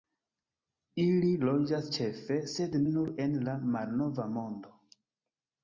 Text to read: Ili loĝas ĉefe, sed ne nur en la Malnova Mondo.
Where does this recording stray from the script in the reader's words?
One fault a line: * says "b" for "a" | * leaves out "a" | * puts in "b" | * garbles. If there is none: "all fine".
* leaves out "ne"